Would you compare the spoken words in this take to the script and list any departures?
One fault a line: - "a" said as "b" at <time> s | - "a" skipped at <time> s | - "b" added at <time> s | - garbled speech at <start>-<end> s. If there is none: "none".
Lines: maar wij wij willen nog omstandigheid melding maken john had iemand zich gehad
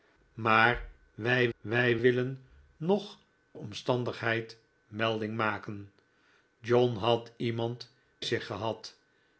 none